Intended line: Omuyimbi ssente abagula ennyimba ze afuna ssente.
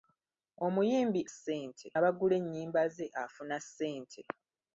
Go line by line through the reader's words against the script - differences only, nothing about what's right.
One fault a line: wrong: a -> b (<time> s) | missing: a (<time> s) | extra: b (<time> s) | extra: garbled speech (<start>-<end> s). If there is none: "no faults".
no faults